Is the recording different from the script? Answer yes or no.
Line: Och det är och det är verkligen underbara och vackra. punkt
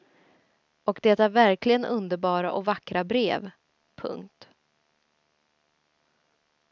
yes